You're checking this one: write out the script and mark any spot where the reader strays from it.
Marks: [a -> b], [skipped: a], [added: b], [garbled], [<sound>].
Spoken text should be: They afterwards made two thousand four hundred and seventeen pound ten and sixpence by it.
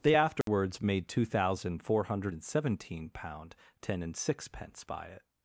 They afterwards [dropout] made two thousand four hundred and seventeen pound ten and sixpence by it.